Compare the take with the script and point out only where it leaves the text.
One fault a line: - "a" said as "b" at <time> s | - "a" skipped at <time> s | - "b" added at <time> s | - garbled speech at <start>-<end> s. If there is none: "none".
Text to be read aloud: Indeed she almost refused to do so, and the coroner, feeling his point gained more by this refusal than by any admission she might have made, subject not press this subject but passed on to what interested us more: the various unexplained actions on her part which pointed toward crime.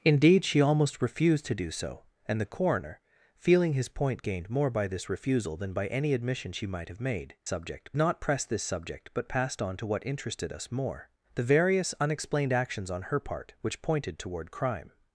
none